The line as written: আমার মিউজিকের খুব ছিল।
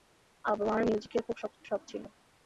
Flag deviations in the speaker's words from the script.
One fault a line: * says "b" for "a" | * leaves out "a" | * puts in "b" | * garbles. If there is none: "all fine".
* puts in "শখ"